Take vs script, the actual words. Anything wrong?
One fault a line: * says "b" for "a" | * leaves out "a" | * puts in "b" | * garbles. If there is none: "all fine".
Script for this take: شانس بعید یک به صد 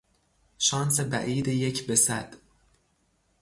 all fine